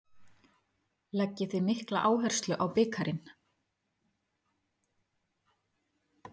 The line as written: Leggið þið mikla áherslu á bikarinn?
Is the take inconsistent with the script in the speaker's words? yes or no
no